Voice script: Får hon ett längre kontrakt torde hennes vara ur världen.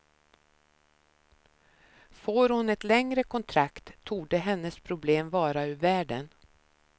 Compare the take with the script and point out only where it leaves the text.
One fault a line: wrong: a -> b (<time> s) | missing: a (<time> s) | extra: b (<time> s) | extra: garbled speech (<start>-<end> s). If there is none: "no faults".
extra: problem (4.8 s)